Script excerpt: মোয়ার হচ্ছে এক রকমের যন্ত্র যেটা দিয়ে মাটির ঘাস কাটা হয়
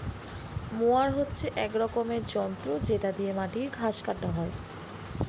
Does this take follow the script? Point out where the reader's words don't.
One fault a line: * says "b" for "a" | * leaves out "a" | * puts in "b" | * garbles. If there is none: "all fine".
all fine